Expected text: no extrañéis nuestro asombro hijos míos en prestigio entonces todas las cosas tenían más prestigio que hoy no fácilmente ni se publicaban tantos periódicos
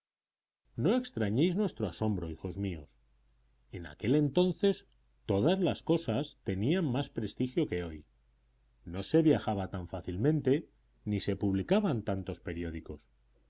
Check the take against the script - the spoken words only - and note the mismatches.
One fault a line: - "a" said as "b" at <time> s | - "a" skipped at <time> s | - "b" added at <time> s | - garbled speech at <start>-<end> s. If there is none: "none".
- "prestigio" said as "aquel" at 3.9 s
- "se viajaba tan" added at 9.0 s